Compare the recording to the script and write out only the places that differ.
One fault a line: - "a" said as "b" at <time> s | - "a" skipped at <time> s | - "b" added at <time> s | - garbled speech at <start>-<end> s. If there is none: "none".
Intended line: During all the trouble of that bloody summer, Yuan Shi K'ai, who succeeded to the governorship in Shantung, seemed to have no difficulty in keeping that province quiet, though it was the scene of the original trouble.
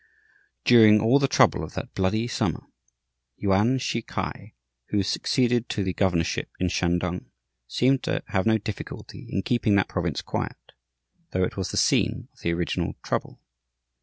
none